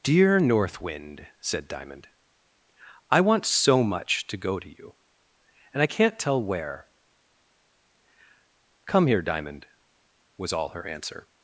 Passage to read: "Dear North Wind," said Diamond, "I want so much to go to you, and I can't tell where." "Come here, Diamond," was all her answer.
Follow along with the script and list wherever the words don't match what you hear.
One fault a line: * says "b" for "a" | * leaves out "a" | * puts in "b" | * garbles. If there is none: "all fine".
all fine